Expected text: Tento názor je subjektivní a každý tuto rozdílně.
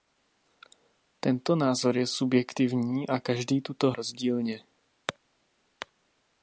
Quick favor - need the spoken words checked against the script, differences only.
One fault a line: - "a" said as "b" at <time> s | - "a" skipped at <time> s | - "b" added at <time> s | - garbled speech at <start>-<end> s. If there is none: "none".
none